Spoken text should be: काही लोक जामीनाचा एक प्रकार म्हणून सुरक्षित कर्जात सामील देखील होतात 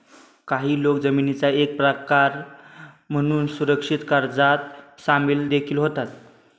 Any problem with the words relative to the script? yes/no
no